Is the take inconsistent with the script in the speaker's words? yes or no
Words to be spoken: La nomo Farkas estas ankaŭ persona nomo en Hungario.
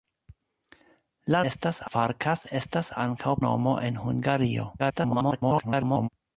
yes